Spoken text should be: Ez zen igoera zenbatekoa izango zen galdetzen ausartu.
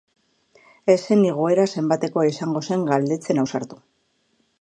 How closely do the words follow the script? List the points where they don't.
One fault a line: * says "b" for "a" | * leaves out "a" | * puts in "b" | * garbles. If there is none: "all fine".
all fine